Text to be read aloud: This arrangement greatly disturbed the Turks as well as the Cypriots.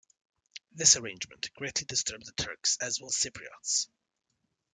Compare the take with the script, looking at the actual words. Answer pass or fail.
fail